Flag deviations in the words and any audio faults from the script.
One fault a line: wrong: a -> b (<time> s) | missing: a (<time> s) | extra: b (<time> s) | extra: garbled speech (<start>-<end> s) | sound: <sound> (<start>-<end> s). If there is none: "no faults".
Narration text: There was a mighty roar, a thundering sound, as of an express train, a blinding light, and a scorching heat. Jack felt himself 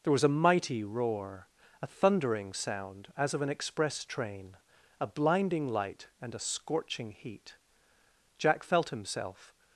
no faults